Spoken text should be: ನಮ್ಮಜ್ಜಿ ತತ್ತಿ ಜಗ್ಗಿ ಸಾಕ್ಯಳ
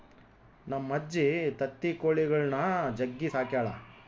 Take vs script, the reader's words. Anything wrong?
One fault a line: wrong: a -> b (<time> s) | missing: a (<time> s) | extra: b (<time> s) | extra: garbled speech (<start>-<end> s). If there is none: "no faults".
extra: ಕೊಳಿಗುಳ್ನ (1.9 s)